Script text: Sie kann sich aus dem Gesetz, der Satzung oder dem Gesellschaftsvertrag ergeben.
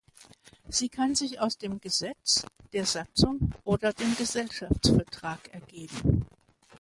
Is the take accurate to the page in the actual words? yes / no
yes